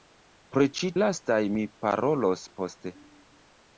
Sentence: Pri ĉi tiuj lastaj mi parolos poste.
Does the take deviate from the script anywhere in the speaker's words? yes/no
yes